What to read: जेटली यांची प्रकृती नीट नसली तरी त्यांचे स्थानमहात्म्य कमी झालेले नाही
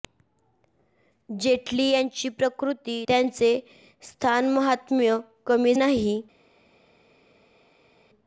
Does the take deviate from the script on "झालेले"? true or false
true